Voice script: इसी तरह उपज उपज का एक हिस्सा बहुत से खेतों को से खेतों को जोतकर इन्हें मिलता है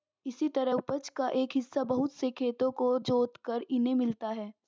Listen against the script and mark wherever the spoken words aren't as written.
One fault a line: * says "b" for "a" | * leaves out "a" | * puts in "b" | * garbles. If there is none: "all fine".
* leaves out "उपज"
* leaves out "से खेतों को"